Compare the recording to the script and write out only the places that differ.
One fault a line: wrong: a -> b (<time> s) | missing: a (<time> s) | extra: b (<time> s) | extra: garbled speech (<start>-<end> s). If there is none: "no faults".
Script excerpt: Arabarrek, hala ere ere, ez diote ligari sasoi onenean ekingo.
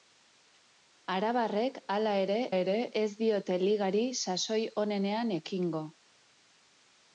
no faults